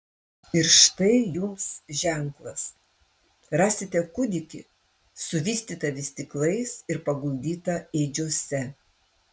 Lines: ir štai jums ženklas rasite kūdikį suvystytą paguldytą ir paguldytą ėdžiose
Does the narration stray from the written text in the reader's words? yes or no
yes